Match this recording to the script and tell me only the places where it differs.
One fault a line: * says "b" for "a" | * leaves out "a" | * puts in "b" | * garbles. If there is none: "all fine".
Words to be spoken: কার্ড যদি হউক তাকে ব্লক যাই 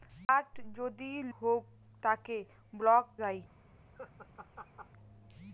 all fine